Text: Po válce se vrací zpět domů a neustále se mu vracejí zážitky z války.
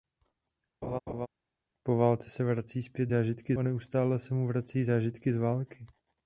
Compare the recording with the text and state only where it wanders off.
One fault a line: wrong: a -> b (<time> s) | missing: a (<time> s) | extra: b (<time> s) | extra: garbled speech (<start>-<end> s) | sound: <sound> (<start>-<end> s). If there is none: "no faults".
sound: laugh (0.8-1.3 s)
wrong: domů -> zážitky (3.1 s)